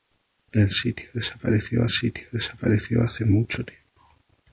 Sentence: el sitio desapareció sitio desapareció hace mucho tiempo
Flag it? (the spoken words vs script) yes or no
no